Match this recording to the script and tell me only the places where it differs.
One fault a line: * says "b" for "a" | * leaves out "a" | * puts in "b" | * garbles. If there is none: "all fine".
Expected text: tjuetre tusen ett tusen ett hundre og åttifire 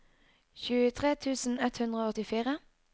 * leaves out "tusen ett"